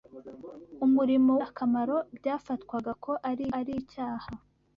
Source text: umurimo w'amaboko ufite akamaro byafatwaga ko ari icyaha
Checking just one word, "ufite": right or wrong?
wrong